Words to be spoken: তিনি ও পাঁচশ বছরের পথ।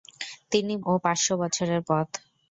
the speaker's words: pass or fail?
pass